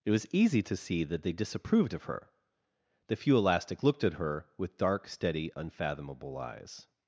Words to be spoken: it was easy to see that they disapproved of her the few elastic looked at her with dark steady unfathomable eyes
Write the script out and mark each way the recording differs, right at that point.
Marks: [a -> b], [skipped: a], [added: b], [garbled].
it was easy to see that they disapproved of her the few elastic looked at her with dark steady unfathomable eyes